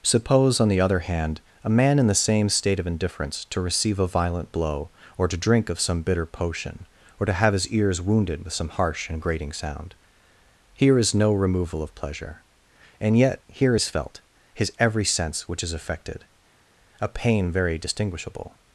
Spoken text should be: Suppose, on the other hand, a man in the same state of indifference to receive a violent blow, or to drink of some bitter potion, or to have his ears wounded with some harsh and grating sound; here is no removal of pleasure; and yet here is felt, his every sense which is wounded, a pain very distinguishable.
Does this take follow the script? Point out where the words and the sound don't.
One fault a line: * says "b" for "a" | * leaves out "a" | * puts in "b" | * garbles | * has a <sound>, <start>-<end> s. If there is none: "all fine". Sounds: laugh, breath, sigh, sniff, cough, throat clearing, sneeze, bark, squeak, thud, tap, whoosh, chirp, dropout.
* says "affected" for "wounded"